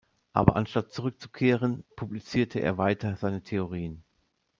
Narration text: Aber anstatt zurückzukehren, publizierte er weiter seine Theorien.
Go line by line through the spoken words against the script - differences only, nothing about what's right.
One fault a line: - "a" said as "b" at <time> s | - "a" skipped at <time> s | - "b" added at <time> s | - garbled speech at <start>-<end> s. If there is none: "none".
none